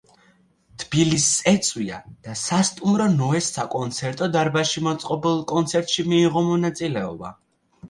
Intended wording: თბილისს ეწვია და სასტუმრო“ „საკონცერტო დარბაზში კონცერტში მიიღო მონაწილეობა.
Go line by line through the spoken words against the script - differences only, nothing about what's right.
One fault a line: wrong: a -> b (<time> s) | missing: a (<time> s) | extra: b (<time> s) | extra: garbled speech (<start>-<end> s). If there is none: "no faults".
extra: ნოეს (3.2 s)
extra: მოწყობილ (4.9 s)